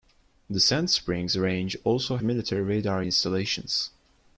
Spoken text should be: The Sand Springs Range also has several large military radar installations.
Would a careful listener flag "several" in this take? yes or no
yes